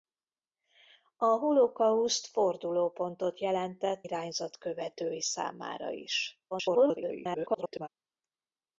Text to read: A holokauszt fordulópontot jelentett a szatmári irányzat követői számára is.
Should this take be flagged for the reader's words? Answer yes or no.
yes